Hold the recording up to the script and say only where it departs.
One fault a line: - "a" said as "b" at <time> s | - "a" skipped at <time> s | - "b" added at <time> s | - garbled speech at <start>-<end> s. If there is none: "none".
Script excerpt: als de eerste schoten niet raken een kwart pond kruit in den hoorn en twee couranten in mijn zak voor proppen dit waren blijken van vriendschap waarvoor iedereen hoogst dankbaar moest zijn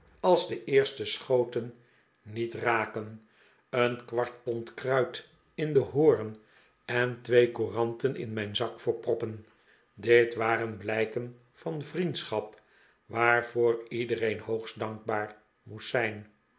none